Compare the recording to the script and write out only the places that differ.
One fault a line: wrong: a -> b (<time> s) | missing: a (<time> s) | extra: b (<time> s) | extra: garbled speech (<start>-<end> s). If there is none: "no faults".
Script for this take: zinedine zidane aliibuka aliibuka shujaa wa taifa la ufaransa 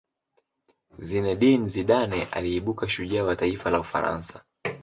missing: aliibuka (2.9 s)